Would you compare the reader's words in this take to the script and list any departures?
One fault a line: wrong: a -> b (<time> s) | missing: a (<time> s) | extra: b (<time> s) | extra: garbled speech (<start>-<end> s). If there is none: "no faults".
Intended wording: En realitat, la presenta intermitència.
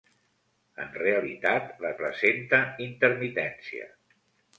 no faults